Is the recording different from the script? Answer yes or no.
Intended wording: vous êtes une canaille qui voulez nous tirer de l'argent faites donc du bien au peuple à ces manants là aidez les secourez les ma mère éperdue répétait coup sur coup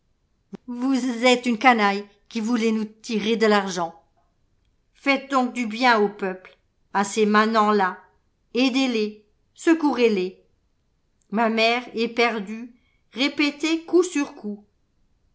no